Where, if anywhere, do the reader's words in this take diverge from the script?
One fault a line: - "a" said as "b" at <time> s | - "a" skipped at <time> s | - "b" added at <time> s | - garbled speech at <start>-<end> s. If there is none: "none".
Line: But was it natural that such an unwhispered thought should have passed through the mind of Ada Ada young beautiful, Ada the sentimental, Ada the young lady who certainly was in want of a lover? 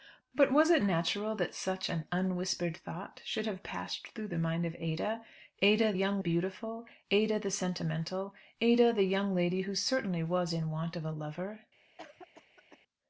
none